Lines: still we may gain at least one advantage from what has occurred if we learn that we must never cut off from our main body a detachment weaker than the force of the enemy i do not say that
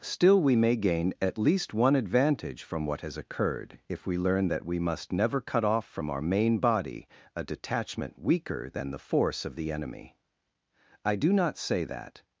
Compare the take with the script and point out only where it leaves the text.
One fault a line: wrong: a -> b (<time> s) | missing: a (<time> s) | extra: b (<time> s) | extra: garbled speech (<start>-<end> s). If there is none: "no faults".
no faults